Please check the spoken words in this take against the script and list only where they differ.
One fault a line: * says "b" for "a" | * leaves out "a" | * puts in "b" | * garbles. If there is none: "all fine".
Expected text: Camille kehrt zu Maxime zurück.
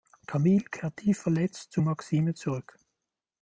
* puts in "tief verletzt"